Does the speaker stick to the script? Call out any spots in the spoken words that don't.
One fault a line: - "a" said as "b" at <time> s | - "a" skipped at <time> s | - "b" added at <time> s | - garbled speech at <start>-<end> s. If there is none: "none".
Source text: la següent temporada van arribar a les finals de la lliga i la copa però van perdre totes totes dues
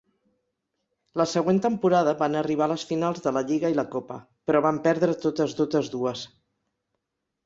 none